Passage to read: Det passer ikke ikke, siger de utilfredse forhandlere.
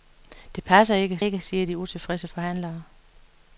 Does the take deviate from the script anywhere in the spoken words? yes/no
no